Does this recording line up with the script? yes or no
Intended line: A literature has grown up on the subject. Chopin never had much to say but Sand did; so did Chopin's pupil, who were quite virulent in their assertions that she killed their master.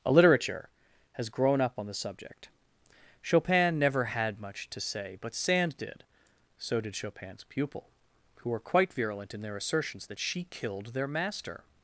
yes